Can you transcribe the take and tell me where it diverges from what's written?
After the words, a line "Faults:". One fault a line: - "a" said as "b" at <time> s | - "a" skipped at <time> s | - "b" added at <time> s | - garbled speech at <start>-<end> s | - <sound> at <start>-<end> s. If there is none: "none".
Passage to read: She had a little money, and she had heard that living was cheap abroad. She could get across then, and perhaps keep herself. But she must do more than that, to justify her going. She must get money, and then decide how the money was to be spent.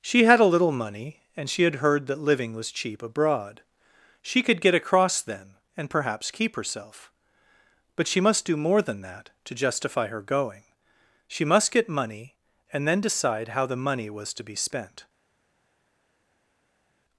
She had a little money, and she had heard that living was cheap abroad. She could get across then, and perhaps keep herself. But she must do more than that, to justify her going. She must get money, and then decide how the money was to be spent.
Faults:
none